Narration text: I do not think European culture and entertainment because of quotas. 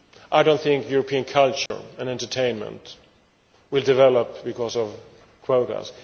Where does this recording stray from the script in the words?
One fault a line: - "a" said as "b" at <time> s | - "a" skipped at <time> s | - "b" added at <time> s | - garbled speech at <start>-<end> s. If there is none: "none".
- "will develop" added at 3.7 s